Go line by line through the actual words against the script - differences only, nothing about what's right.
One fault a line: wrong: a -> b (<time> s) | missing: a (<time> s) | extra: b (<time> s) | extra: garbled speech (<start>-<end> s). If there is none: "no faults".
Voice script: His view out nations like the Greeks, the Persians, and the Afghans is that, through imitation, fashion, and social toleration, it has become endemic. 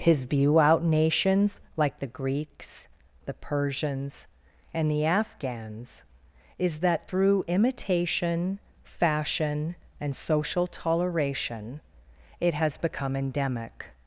no faults